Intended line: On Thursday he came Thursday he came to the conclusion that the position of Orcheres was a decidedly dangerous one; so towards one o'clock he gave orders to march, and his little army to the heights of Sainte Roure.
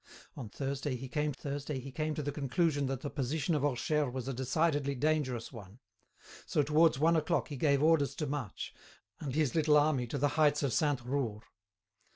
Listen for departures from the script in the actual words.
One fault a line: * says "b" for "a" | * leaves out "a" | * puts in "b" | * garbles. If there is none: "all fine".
all fine